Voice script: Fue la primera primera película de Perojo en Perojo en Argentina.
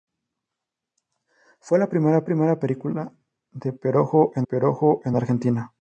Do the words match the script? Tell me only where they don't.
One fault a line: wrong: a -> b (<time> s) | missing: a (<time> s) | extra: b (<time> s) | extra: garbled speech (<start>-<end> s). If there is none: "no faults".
no faults